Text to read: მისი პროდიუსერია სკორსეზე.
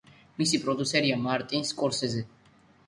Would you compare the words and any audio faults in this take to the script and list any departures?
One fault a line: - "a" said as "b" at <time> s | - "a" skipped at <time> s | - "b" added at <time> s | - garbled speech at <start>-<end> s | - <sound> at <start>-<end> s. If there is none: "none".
- "მარტინ" added at 1.3 s